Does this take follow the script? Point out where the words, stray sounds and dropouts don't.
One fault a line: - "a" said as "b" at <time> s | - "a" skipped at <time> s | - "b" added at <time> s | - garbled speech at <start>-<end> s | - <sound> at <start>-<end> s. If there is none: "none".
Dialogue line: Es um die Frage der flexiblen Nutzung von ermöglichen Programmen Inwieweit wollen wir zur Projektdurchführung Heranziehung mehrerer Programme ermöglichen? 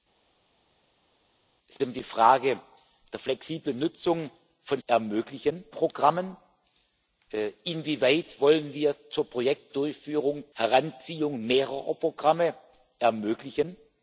none